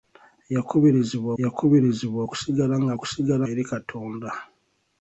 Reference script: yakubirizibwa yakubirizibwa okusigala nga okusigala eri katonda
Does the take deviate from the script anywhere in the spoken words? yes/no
no